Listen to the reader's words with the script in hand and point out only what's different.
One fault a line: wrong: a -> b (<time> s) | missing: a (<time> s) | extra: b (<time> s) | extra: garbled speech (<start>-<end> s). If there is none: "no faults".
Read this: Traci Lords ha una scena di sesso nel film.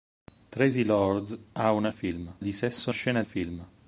wrong: scena -> film (1.9 s)
wrong: nel -> scena (2.9 s)